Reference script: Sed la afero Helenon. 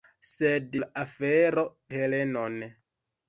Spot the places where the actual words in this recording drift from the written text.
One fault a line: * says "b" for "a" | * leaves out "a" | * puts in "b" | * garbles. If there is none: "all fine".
all fine